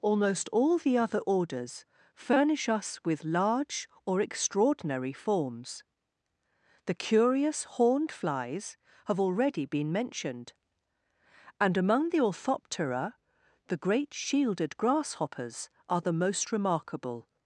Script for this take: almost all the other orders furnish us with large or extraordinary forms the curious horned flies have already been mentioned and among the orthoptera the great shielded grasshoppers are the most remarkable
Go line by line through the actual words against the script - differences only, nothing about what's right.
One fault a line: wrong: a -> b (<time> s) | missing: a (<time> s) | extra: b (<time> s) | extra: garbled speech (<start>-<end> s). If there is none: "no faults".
no faults